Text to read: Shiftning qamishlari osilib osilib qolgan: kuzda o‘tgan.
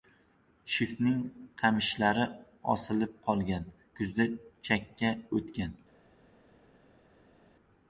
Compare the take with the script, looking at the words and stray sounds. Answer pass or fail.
fail